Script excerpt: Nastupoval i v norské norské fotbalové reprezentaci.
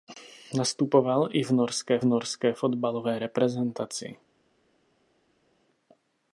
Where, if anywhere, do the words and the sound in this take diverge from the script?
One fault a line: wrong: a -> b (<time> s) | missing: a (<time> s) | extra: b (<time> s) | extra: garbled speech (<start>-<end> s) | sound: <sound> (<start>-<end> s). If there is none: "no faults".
no faults